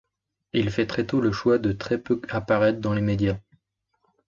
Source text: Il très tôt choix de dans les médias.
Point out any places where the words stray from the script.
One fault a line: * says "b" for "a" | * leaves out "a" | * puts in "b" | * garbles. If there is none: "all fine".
* puts in "fait"
* puts in "le"
* puts in "très peu apparaître"